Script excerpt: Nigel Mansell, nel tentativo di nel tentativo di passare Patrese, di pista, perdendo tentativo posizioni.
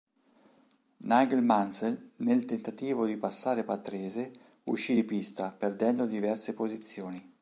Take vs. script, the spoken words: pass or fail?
fail